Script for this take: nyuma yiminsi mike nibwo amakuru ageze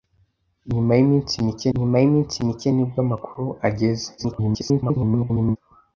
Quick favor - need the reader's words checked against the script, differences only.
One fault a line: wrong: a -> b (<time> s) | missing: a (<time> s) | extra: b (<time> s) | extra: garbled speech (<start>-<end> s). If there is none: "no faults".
extra: nyuma yiminsi mike (1.8 s)
extra: garbled speech (4.2-5.6 s)